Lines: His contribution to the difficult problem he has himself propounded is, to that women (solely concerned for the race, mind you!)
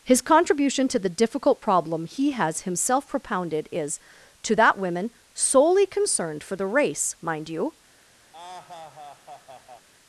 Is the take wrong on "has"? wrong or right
right